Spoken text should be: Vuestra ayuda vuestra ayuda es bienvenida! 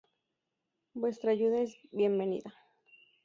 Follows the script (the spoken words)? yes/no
no